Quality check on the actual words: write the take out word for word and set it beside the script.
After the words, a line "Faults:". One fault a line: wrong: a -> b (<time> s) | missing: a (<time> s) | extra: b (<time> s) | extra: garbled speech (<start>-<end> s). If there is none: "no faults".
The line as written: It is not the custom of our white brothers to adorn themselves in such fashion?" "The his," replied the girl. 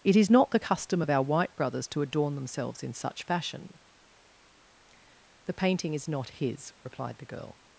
It is not the custom of our white brothers to adorn themselves in such fashion?" "The painting is not his," replied the girl.
Faults:
extra: painting is not (5.5 s)